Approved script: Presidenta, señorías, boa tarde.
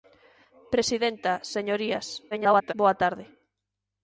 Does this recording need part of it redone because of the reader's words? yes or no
yes